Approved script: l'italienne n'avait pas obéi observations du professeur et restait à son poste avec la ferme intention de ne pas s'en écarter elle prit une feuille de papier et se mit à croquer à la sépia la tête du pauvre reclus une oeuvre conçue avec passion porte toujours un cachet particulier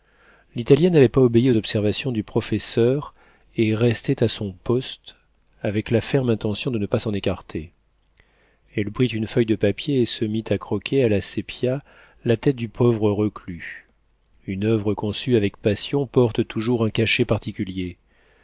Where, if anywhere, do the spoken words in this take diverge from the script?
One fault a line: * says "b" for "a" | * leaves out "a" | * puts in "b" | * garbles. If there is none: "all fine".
all fine